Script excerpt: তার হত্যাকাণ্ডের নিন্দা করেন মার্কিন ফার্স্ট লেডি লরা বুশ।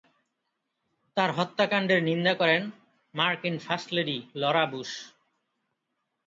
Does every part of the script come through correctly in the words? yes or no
yes